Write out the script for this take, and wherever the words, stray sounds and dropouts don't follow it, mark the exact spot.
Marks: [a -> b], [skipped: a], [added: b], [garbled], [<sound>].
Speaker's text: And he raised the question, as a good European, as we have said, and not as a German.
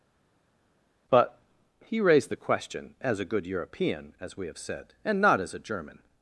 [And -> But] he raised the question, as a good European, as we have said, and not as a German.